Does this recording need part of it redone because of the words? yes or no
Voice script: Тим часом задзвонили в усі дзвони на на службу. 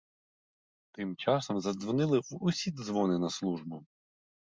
yes